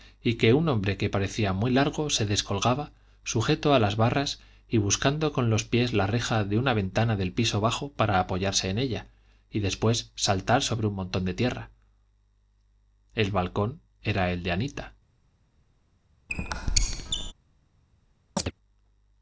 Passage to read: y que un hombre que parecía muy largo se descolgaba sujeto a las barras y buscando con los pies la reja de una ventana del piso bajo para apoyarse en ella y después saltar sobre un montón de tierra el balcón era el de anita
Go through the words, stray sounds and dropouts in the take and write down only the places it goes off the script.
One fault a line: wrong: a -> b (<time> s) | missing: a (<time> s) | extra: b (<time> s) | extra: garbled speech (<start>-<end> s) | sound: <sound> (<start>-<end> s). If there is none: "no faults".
sound: squeak (16.3-17.3 s)
sound: chirp (18.4-18.5 s)